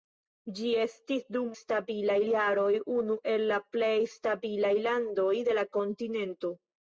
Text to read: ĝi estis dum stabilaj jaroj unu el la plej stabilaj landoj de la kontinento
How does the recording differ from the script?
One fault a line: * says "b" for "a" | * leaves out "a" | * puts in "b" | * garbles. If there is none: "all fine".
all fine